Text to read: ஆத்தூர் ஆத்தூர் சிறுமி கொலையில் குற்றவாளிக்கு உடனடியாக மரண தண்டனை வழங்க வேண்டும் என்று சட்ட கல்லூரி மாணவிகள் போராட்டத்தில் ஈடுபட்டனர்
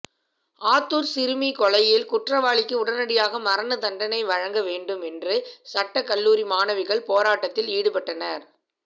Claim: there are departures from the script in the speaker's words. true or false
true